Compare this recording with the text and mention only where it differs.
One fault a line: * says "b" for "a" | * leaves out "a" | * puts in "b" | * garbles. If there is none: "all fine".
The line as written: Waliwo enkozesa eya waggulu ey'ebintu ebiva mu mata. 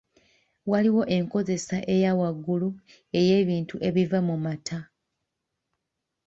all fine